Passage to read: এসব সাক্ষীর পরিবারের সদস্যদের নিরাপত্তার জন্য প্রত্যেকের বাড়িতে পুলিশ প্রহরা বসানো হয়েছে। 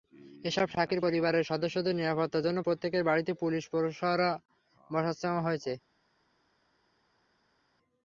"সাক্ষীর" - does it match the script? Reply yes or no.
yes